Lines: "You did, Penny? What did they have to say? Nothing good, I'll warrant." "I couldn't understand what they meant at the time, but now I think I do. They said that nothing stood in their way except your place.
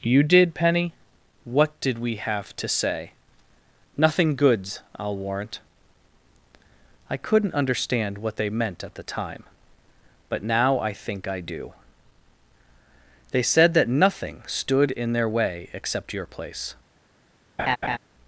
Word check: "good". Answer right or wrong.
wrong